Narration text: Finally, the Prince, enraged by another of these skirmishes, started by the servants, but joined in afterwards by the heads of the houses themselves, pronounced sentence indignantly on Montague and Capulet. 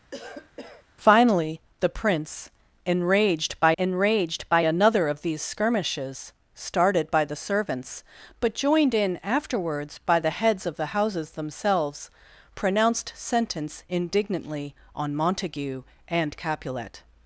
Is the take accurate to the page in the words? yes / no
no